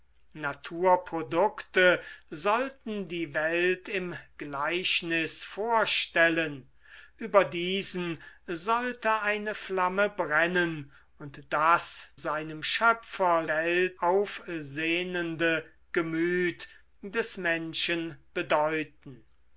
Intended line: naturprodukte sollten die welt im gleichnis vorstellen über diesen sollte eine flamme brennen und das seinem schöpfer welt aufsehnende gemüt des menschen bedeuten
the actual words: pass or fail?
pass